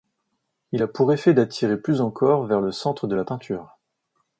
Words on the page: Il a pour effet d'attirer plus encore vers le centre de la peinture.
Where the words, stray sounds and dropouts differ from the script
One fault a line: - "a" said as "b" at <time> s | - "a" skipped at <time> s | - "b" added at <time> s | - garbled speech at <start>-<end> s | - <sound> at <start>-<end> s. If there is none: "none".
none